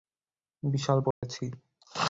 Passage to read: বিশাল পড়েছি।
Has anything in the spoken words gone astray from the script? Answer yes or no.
no